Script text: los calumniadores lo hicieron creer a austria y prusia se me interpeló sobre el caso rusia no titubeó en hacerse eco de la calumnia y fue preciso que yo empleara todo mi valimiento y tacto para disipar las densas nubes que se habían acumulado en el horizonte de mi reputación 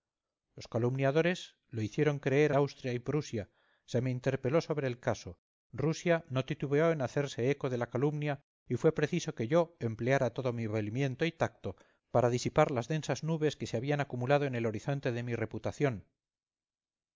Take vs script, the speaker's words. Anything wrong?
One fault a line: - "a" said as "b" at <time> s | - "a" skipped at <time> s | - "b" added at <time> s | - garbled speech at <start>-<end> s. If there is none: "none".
none